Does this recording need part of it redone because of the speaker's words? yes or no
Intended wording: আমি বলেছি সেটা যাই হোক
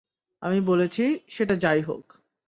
no